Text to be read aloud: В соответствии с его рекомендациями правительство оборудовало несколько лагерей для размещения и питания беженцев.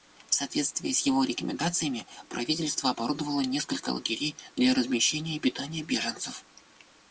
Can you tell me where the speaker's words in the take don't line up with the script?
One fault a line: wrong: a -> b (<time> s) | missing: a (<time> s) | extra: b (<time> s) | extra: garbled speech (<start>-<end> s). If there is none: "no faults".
no faults